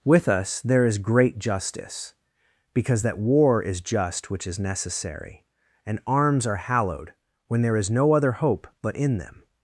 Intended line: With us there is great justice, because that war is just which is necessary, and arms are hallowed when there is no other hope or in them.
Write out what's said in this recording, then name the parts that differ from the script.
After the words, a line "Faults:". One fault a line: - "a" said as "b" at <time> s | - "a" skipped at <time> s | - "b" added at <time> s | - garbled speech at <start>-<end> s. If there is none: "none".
With us there is great justice, because that war is just which is necessary, and arms are hallowed when there is no other hope but in them.
Faults:
- "or" said as "but" at 8.8 s